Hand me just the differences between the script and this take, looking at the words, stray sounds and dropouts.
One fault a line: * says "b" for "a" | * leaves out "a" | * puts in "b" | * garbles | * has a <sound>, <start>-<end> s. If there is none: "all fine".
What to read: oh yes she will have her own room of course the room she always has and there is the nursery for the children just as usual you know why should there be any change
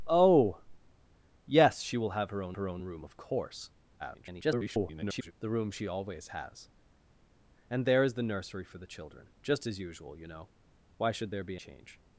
* puts in "her own"
* garbles
* leaves out "any"